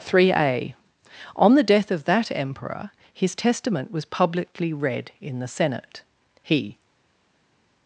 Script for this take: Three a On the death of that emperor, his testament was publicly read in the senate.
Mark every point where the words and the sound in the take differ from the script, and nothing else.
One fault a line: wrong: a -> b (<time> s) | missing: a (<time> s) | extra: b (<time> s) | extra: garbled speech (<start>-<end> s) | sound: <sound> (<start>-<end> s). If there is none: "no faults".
extra: He (6.4 s)